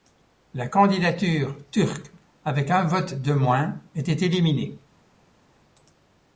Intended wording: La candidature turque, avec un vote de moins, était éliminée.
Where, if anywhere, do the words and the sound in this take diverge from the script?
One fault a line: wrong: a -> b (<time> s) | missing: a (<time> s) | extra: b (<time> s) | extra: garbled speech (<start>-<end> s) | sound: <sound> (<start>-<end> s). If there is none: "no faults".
no faults